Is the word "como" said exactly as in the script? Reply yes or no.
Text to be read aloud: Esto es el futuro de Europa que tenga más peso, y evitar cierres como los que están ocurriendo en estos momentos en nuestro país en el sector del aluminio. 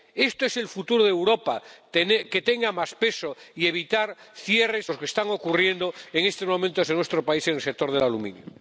no